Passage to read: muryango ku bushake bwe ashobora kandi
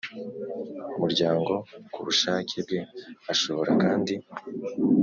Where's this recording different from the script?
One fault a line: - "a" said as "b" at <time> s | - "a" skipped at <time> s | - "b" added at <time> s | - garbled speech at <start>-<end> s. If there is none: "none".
none